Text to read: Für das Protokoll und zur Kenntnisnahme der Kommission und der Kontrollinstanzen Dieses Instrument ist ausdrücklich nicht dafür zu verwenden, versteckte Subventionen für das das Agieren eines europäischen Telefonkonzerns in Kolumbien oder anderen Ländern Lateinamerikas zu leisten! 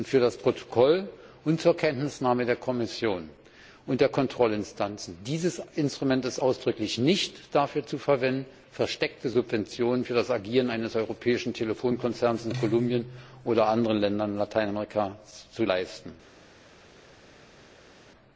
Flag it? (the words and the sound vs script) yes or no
yes